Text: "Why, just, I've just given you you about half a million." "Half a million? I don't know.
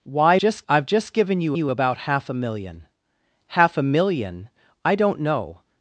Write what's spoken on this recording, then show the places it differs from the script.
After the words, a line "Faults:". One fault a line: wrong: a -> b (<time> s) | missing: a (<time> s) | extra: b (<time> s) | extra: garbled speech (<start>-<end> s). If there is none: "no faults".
"Why, just, I've just given you you about half a million." "Half a million? I don't know.
Faults:
no faults